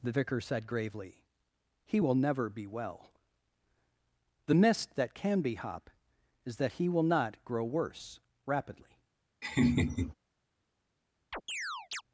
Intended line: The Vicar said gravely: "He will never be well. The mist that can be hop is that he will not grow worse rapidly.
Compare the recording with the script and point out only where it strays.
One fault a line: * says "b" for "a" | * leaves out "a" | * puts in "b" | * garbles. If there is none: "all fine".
all fine